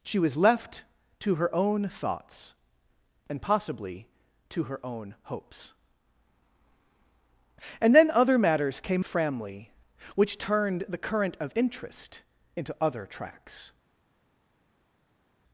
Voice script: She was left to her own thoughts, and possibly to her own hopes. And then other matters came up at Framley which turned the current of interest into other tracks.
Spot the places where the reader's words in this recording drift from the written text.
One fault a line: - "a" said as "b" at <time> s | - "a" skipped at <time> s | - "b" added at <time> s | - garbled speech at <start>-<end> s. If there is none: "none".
- "up at" skipped at 9.1 s